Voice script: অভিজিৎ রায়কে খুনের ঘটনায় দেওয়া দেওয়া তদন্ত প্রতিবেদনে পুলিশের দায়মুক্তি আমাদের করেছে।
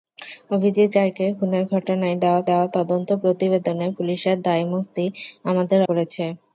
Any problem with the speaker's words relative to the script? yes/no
no